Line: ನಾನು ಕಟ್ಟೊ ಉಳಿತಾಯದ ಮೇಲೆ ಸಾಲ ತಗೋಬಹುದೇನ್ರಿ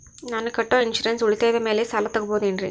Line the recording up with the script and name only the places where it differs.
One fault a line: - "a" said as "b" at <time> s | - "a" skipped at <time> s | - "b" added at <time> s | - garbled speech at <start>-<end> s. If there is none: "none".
- "ಇನ್ಸೂರೆನ್ಸ್" added at 0.8 s